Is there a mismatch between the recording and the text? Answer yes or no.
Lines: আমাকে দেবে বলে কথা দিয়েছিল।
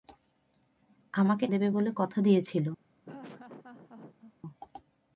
no